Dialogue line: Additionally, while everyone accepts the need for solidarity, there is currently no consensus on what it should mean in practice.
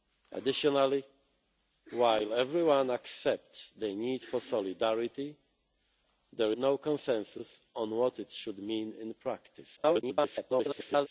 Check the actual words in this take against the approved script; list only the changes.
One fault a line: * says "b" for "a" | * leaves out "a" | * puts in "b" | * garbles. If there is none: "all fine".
* leaves out "is currently"
* garbles